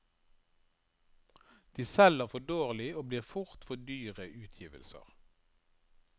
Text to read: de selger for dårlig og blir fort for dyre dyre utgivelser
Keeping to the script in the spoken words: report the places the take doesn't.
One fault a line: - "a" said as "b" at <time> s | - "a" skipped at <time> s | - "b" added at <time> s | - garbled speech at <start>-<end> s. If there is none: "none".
- "dyre" skipped at 4.3 s